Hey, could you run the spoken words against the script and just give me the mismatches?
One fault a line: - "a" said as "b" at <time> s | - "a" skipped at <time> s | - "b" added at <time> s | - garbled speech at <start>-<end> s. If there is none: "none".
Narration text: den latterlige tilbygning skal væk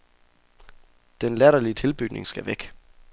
none